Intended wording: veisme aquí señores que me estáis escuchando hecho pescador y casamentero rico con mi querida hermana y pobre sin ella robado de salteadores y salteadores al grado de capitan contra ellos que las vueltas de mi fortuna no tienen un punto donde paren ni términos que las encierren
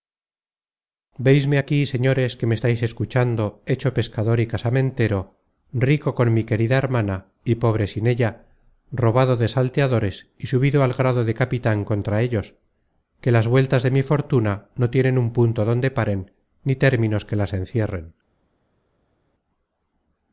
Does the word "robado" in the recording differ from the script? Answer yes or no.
no